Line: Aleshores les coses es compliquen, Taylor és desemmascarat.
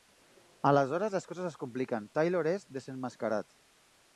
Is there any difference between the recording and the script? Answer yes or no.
no